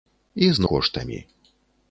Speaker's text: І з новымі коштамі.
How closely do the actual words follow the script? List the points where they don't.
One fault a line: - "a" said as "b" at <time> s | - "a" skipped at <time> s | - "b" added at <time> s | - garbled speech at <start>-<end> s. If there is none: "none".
- "новымі" skipped at 0.6 s